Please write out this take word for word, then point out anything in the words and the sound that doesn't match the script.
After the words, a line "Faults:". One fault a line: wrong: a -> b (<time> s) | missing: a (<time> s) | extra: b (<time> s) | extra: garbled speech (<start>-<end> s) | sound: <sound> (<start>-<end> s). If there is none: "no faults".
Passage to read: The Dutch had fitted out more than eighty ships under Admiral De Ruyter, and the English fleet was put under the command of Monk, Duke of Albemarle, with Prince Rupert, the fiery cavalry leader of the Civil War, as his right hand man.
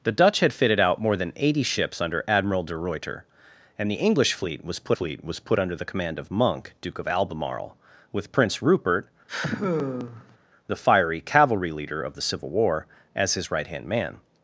The Dutch had fitted out more than eighty ships under Admiral De Ruyter, and the English fleet was put fleet was put under the command of Monk, Duke of Albemarle, with Prince Rupert, the fiery cavalry leader of the Civil War, as his right hand man.
Faults:
extra: fleet was put (4.9 s)
sound: sigh (9.3-10.4 s)